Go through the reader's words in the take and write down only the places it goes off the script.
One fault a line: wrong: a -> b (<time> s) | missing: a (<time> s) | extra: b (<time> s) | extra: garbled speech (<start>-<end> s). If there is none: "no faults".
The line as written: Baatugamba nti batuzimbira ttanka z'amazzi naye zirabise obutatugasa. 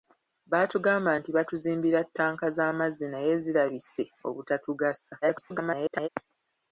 extra: garbled speech (5.2-6.1 s)